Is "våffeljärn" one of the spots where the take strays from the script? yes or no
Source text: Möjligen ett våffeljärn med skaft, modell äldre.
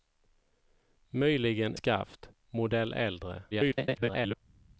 yes